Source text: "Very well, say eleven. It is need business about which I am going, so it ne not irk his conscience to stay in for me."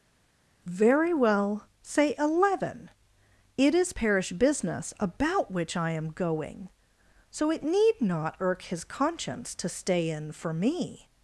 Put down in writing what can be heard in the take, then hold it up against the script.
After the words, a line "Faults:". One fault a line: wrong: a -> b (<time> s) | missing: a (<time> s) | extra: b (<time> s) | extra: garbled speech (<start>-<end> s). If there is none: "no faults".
"Very well, say eleven. It is parish business about which I am going, so it need not irk his conscience to stay in for me."
Faults:
wrong: need -> parish (3.9 s)
wrong: ne -> need (7.6 s)